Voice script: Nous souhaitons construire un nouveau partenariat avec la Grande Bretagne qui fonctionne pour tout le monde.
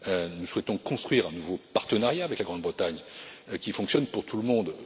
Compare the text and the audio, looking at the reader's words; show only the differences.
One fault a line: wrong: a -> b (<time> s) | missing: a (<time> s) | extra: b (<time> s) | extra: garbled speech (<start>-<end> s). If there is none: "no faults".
no faults